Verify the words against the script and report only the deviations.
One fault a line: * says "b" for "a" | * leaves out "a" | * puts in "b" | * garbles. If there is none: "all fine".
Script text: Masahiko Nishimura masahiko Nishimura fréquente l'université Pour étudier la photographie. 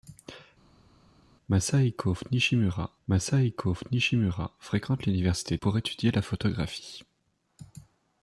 all fine